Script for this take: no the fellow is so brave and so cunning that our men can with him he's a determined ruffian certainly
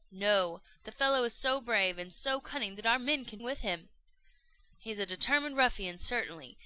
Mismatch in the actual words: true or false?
false